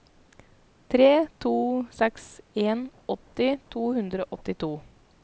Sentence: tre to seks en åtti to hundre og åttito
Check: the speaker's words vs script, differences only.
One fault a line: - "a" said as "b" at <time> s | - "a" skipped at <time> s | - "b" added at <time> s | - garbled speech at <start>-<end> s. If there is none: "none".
none